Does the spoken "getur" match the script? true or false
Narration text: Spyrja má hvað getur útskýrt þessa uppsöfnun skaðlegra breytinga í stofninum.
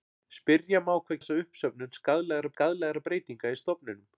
false